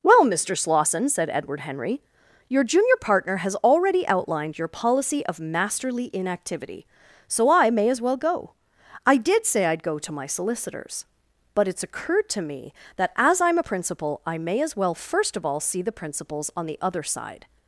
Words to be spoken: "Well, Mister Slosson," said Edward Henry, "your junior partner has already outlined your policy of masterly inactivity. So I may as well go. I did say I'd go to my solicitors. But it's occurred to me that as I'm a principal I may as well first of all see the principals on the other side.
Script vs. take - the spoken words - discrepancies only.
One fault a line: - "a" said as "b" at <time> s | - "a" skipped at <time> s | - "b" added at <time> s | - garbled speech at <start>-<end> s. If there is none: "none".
none